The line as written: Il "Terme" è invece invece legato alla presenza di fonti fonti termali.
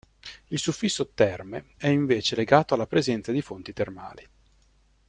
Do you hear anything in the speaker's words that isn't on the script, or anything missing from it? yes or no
yes